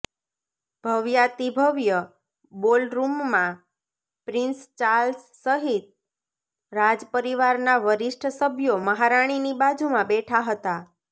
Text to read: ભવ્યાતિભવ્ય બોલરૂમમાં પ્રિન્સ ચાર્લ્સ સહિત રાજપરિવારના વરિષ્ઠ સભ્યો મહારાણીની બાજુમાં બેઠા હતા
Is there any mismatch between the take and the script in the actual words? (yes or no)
no